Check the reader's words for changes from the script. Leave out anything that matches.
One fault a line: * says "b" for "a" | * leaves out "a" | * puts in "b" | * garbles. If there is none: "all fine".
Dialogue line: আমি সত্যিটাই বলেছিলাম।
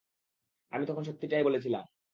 * puts in "তখন"